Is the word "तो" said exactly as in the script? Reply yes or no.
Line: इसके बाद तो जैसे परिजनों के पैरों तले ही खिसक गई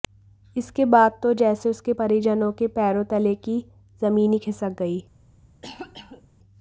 yes